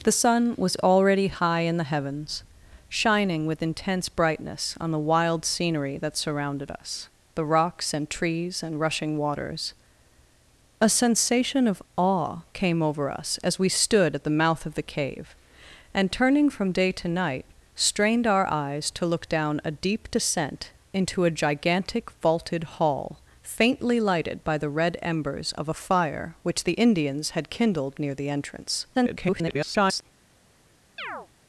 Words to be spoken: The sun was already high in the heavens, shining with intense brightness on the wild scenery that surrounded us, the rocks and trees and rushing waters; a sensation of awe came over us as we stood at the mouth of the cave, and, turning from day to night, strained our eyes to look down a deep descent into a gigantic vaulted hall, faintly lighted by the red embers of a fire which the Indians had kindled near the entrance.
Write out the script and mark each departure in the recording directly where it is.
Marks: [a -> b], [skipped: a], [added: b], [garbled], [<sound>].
The sun was already high in the heavens, shining with intense brightness on the wild scenery that surrounded us, the rocks and trees and rushing waters; a sensation of awe came over us as we stood at the mouth of the cave, and, turning from day to night, strained our eyes to look down a deep descent into a gigantic vaulted hall, faintly lighted by the red embers of a fire which the Indians had kindled near the entrance. [garbled] [chirp]